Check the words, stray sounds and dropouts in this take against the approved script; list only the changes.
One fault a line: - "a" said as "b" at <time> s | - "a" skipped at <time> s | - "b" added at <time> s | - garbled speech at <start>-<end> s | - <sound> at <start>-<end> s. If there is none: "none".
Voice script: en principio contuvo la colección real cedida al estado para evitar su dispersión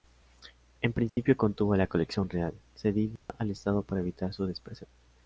- dropout at 1.1-1.2 s
- dropout at 3.2-3.3 s